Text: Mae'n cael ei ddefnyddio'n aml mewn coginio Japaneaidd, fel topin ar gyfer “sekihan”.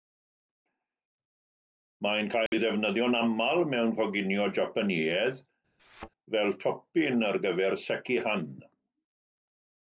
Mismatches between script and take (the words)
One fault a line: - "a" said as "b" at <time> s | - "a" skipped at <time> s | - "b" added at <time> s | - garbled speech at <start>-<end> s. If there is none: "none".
none